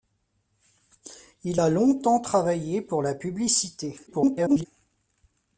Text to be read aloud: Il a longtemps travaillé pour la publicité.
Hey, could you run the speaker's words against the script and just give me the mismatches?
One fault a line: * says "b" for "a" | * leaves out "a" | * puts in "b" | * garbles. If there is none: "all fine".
* garbles